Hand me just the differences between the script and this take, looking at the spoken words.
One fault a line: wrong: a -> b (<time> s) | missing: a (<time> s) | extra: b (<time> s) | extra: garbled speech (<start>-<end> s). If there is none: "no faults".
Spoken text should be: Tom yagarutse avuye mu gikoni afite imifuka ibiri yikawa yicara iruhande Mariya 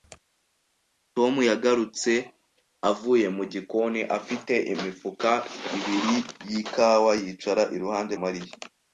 no faults